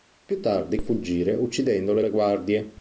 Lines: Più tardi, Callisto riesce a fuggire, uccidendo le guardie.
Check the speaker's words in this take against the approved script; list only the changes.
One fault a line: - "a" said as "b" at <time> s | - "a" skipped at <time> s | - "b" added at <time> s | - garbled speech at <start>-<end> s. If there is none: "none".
- "Callisto riesce" skipped at 0.8 s
- "le" added at 2.0 s